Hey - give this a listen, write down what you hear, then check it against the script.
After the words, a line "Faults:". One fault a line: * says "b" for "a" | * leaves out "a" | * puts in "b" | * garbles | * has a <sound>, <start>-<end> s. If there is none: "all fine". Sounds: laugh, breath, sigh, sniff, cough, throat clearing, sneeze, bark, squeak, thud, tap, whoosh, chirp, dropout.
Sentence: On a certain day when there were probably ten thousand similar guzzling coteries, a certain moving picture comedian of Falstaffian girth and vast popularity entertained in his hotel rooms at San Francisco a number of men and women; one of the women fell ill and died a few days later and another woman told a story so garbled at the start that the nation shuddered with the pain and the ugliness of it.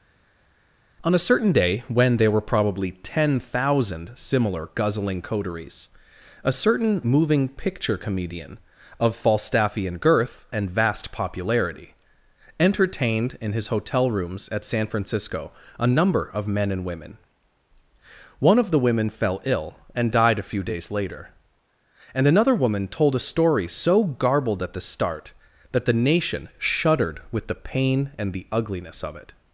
On a certain day when there were probably ten thousand similar guzzling coteries, a certain moving picture comedian of Falstaffian girth and vast popularity entertained in his hotel rooms at San Francisco a number of men and women; one of the women fell ill and died a few days later and another woman told a story so garbled at the start that the nation shuddered with the pain and the ugliness of it.
Faults:
all fine